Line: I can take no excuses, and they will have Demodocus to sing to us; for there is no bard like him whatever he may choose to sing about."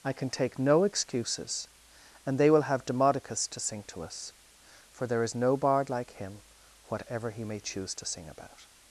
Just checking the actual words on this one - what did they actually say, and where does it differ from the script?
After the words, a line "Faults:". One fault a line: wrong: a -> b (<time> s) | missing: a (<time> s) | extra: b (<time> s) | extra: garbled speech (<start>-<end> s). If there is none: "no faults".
I can take no excuses, and they will have Demodocus to sing to us; for there is no bard like him whatever he may choose to sing about."
Faults:
no faults